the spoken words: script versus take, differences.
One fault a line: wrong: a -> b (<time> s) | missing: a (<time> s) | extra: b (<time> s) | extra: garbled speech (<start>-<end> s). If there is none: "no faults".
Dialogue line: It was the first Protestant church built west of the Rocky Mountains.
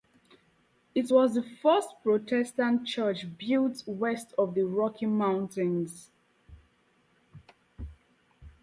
no faults